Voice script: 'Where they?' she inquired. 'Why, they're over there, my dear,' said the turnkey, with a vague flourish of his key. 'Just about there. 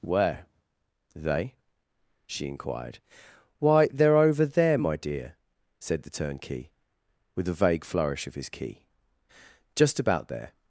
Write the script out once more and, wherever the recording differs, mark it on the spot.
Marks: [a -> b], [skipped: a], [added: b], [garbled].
'Where they?' she inquired. 'Why, they're over there, my dear,' said the turnkey, with a vague flourish of his key. 'Just about there.